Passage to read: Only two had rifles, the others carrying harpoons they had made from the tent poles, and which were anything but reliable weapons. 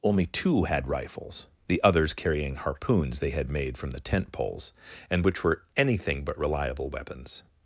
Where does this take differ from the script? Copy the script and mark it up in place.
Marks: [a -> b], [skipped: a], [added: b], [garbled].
Only two had rifles, the others carrying harpoons they had made from the tent poles, and which were anything but reliable weapons.